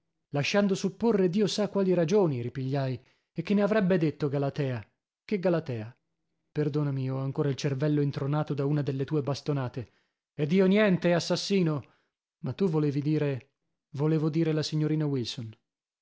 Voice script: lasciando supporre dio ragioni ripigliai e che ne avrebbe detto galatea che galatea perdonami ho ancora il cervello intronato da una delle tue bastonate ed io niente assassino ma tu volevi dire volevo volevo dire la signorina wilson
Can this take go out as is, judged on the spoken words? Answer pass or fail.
fail